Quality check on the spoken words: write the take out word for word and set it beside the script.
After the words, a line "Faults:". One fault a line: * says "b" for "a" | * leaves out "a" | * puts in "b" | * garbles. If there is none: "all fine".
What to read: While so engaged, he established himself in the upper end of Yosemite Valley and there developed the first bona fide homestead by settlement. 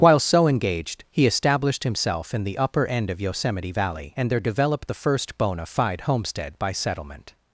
While so engaged, he established himself in the upper end of Yosemite Valley and there developed the first bona fide homestead by settlement.
Faults:
all fine